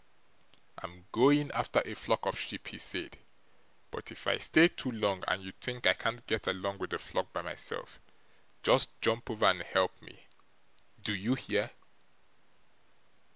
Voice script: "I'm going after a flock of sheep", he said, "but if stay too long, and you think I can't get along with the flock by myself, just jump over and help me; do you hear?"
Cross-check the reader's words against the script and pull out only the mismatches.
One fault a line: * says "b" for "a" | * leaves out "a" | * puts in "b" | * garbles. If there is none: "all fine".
* puts in "I"